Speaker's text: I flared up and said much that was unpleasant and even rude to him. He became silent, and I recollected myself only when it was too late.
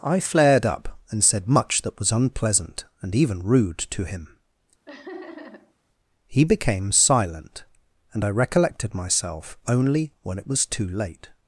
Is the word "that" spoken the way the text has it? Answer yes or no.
yes